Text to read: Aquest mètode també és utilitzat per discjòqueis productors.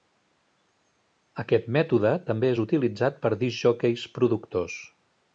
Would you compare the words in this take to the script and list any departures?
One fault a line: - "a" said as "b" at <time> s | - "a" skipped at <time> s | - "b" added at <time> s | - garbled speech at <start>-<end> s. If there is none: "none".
none